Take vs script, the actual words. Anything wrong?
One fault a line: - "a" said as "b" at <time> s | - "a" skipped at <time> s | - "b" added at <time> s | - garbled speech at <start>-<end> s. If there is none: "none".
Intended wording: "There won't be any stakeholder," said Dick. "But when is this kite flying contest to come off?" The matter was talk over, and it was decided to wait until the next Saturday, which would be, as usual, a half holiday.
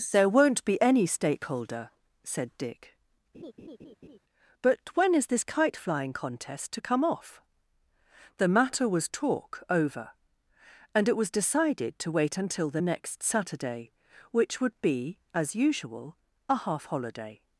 none